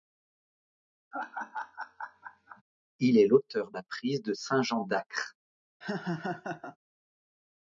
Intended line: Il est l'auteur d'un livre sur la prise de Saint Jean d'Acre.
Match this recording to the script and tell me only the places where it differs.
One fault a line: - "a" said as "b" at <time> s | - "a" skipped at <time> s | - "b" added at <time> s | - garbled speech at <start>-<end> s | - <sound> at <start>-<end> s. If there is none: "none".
- laugh at 1.1-2.6 s
- "d'un livre sur" skipped at 3.7 s
- laugh at 5.8-6.8 s